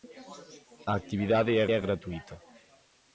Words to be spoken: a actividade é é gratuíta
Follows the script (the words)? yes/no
yes